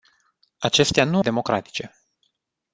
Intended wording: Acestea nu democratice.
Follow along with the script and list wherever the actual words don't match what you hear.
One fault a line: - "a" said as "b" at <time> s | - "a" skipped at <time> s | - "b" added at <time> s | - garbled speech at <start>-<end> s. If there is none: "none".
none